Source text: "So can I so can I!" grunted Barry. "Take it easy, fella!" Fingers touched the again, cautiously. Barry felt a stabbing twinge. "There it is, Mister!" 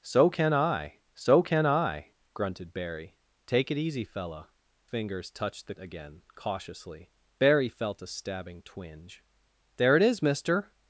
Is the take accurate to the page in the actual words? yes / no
yes